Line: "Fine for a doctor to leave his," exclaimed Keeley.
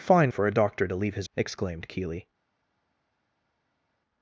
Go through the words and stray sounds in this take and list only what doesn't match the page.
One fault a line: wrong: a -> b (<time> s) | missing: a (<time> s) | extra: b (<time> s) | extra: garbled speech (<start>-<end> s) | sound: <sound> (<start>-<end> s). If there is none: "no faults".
no faults